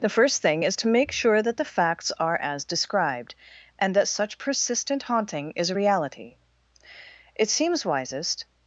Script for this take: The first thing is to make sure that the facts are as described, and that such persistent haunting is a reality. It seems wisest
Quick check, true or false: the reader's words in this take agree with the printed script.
true